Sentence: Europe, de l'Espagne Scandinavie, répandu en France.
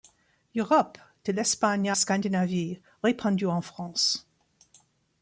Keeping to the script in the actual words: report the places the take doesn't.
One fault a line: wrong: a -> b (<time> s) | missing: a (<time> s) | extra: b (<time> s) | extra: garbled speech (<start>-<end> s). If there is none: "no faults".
no faults